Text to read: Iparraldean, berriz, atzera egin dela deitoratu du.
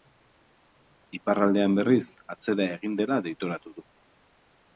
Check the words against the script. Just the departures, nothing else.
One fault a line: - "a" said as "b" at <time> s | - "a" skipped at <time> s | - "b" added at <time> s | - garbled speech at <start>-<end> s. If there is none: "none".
none